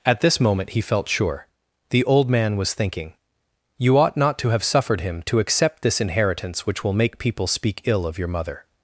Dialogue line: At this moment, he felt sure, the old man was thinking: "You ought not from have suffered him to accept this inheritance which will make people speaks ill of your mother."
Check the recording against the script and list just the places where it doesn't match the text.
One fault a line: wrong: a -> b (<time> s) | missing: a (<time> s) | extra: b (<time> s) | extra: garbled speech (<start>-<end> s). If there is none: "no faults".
wrong: from -> to (4.4 s)
wrong: speaks -> speak (7.5 s)